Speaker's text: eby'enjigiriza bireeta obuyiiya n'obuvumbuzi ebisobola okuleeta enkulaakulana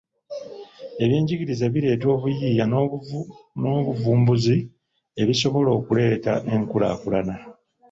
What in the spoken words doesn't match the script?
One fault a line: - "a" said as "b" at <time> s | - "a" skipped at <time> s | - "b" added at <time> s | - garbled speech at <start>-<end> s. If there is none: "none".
none